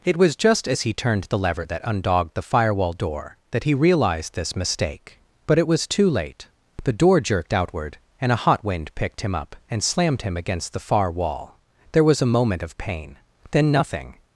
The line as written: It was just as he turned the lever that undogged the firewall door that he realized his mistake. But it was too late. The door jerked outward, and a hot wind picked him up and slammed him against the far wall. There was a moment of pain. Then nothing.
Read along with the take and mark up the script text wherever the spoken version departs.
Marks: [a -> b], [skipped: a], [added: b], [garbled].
It was just as he turned the lever that undogged the firewall door that he realized [his -> this] mistake. But it was too late. The door jerked outward, and a hot wind picked him up and slammed him against the far wall. There was a moment of pain. Then nothing.